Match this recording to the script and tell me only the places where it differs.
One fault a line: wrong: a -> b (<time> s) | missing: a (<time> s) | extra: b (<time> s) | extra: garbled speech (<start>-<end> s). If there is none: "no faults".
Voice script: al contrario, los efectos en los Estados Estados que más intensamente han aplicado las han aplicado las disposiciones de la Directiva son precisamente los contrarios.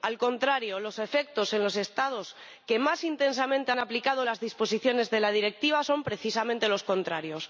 missing: Estados (2.4 s)
missing: han aplicado las (4.4 s)